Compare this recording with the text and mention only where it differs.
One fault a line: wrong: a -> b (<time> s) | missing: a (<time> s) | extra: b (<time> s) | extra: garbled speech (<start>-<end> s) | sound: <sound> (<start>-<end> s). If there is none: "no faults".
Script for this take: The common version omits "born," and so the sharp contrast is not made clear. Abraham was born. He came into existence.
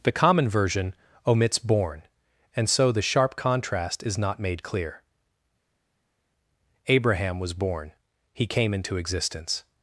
no faults